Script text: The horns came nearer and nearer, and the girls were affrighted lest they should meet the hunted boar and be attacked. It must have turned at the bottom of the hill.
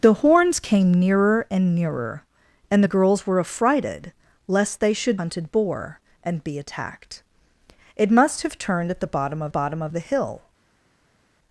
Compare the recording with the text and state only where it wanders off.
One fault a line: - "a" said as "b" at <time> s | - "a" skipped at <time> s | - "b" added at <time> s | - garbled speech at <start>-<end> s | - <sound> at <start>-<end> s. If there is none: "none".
- "meet the" skipped at 5.2 s
- "bottom of" added at 9.5 s